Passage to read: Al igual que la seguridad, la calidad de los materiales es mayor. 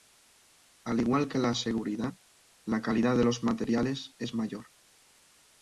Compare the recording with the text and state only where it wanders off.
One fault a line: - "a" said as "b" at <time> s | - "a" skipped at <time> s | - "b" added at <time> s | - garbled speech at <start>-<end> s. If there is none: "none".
none